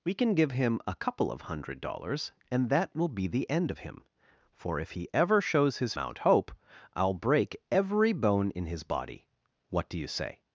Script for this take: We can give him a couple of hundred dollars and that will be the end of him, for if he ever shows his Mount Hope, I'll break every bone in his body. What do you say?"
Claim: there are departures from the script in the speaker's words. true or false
false